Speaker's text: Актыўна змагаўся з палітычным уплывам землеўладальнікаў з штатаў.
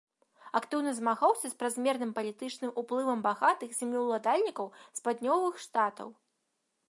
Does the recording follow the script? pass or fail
fail